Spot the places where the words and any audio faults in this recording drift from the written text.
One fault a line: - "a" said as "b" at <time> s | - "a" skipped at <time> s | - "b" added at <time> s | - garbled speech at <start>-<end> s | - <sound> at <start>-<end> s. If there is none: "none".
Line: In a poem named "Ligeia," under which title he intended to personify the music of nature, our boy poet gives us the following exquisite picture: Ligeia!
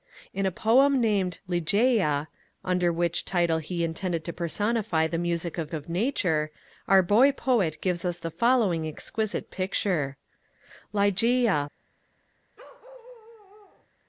- "of" added at 5.7 s
- bark at 12.6-13.9 s